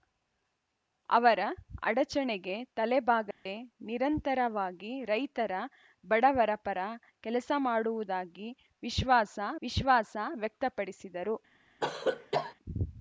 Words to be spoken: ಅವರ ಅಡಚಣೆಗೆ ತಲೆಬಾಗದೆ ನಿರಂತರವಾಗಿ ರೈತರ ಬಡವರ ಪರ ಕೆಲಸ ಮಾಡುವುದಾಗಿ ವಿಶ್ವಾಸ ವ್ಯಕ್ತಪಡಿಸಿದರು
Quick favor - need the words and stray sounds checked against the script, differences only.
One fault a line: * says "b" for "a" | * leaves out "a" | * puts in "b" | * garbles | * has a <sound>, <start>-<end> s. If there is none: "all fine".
* has a dropout, 3.3-3.5 s
* puts in "ವಿಶ್ವಾಸ"
* has a cough, 11.8-12.5 s